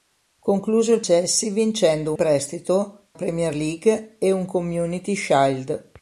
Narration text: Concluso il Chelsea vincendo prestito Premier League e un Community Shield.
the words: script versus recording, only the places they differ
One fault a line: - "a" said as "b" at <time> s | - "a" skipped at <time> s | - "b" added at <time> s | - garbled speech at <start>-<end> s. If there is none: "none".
none